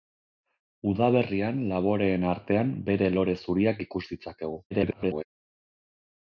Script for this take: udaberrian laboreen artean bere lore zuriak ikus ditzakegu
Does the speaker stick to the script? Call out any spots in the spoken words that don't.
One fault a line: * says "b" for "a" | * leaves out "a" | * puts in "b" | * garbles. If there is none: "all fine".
* garbles